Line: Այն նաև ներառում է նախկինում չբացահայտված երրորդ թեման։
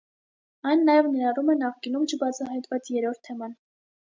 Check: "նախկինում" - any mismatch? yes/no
no